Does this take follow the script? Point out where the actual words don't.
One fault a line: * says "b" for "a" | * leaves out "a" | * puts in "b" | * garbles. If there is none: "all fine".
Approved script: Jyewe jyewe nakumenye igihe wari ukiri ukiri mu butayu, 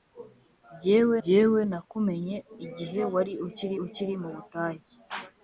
all fine